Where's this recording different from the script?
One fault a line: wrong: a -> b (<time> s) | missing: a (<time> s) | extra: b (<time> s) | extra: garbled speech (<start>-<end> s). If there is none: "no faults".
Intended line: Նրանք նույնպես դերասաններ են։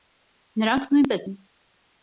missing: դերասաններ (1.3 s)